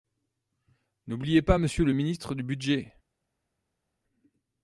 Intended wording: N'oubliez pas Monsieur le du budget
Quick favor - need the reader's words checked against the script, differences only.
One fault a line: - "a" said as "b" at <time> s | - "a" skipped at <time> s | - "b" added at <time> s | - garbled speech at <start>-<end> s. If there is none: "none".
- "ministre" added at 1.9 s